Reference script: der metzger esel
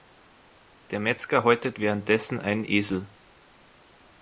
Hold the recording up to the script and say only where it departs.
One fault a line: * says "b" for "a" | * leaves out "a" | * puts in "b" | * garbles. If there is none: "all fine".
* puts in "häutet währenddessen einen"